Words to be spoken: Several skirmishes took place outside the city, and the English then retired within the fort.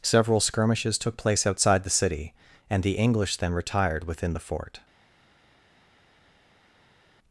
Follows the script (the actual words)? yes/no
yes